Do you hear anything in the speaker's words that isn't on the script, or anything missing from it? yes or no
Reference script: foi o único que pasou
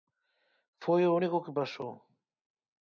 no